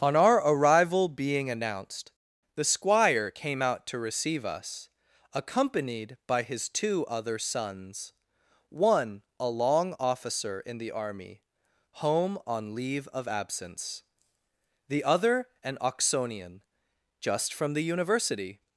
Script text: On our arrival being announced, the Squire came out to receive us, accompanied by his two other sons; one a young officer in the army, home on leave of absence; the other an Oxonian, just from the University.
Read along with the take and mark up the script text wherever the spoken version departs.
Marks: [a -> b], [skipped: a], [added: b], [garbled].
On our arrival being announced, the Squire came out to receive us, accompanied by his two other sons; one a [young -> long] officer in the army, home on leave of absence; the other an Oxonian, just from the University.